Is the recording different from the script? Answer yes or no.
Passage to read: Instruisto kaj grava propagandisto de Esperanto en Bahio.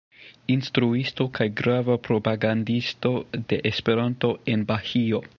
no